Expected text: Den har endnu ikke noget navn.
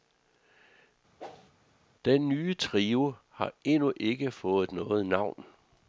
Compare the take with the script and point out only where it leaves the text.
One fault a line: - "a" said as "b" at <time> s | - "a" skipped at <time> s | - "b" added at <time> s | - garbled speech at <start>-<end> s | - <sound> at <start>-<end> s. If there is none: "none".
- whoosh at 1.2-1.5 s
- "nye trio" added at 2.3 s
- "fået" added at 4.3 s